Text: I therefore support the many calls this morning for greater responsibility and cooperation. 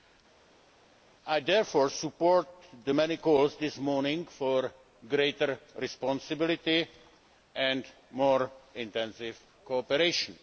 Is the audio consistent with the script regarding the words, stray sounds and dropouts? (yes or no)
no